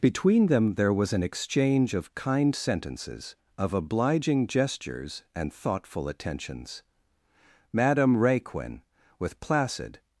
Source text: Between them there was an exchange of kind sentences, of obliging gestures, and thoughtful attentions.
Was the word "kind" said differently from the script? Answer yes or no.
no